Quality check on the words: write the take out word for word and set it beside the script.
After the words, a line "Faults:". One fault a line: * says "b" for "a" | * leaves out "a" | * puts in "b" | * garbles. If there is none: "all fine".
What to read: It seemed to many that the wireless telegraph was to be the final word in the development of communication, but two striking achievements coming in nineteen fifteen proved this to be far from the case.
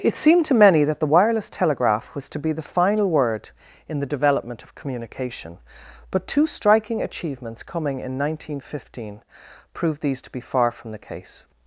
It seemed to many that the wireless telegraph was to be the final word in the development of communication, but two striking achievements coming in nineteen fifteen proved these to be far from the case.
Faults:
* says "these" for "this"